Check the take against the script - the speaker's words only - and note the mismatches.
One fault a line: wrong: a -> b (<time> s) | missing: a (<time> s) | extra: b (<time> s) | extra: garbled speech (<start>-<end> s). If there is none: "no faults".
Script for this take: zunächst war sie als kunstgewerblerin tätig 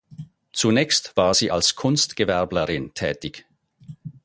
no faults